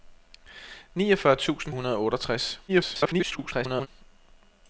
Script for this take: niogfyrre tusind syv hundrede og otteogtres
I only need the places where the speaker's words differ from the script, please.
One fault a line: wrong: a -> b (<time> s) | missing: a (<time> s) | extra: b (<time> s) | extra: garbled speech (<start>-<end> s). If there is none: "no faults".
missing: syv (1.7 s)
extra: garbled speech (2.7-3.9 s)